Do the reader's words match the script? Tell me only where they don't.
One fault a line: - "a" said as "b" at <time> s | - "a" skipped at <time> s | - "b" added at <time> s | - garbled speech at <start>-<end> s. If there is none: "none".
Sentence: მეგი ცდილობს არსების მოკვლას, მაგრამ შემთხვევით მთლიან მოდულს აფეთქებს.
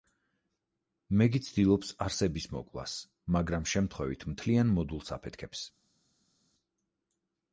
none